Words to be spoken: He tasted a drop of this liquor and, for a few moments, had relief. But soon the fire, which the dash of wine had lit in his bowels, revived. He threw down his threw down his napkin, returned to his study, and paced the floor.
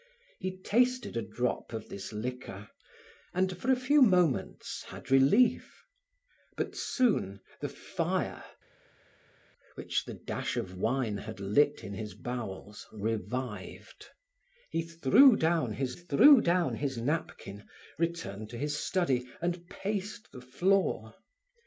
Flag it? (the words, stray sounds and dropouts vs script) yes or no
no